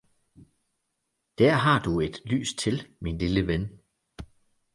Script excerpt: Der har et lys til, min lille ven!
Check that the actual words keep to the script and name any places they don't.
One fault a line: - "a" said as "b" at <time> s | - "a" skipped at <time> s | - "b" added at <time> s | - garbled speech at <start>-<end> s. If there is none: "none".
- "du" added at 1.8 s